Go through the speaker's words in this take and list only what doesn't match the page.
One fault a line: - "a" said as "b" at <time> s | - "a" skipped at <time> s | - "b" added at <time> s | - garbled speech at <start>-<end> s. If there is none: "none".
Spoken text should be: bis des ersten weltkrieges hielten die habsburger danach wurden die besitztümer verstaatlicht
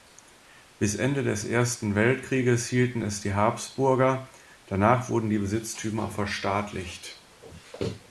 - "ende" added at 0.9 s
- "es" added at 3.0 s